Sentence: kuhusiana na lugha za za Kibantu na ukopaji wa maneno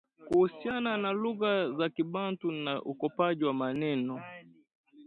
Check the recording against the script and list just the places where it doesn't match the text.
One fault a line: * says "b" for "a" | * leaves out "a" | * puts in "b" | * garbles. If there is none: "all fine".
* leaves out "za"